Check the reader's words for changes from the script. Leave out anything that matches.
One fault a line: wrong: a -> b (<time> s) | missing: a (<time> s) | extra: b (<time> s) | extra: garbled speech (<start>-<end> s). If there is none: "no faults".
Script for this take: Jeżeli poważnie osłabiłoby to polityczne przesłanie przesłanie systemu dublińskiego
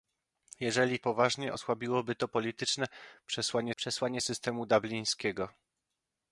no faults